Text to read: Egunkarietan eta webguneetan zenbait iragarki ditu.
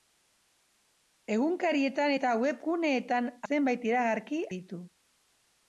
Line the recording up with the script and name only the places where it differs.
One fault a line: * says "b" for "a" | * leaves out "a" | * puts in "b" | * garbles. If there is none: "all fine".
all fine